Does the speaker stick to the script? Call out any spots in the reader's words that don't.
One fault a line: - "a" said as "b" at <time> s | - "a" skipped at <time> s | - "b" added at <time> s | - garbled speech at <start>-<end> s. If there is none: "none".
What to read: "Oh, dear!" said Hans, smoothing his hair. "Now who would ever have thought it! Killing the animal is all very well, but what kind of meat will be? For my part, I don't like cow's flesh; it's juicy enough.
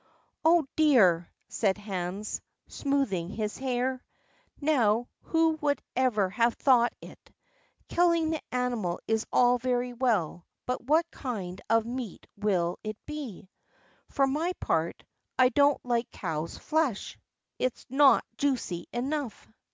- "it" added at 12.8 s
- "not" added at 17.9 s